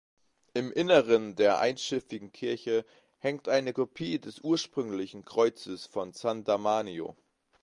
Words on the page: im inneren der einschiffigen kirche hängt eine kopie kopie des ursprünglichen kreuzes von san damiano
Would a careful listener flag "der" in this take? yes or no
no